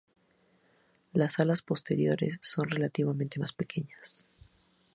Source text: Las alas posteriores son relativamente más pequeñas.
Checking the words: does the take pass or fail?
pass